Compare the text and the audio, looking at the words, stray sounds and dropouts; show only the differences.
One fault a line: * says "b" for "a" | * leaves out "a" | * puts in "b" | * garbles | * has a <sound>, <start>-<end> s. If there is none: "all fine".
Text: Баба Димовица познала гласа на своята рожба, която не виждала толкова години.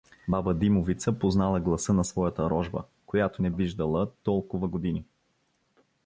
all fine